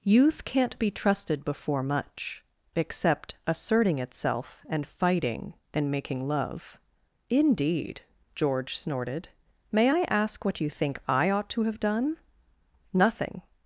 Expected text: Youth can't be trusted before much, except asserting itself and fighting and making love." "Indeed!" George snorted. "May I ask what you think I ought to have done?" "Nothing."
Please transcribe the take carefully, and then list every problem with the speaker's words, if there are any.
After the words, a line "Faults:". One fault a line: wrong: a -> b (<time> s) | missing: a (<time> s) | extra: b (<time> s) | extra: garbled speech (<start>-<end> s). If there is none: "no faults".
Youth can't be trusted before much, except asserting itself and fighting and making love." "Indeed!" George snorted. "May I ask what you think I ought to have done?" "Nothing."
Faults:
no faults